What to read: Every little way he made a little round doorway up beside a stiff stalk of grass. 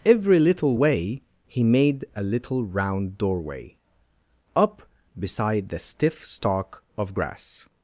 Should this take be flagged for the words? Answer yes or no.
yes